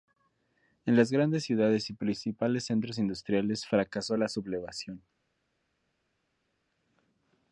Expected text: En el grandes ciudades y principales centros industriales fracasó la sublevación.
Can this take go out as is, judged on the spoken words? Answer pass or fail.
fail